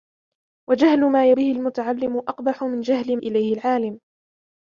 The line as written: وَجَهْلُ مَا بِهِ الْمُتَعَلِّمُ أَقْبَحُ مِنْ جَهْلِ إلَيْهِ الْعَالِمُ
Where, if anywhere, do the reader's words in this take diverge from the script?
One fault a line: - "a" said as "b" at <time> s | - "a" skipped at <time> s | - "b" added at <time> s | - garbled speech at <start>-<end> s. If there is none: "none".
none